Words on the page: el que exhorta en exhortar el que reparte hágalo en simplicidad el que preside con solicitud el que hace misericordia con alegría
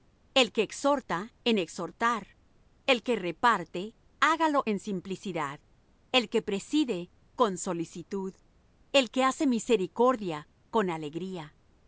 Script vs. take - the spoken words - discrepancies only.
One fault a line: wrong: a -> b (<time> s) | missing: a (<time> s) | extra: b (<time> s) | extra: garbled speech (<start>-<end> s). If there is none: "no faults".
no faults